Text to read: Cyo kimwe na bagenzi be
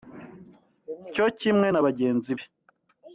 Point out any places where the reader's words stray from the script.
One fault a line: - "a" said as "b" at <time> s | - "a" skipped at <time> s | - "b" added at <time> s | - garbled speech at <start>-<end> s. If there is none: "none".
none